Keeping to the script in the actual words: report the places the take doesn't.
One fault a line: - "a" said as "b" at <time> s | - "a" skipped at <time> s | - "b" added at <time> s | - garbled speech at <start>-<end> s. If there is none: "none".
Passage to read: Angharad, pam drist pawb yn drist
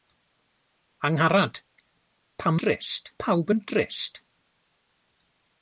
none